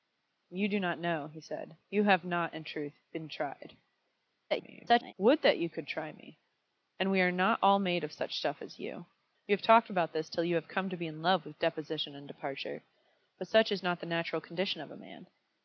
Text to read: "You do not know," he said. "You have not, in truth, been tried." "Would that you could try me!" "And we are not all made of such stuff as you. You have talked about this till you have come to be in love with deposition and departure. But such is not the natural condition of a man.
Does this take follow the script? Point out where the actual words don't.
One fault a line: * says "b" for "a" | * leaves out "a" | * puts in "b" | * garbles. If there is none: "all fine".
* garbles